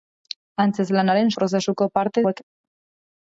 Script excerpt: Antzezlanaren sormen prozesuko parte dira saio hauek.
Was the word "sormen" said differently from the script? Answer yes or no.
yes